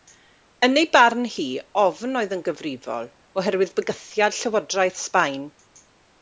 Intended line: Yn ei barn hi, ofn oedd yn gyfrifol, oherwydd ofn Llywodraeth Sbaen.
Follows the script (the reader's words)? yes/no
no